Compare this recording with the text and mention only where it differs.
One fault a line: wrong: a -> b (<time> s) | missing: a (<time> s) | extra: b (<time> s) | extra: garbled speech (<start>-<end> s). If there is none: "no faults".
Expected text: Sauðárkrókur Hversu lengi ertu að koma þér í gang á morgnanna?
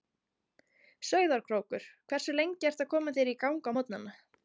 no faults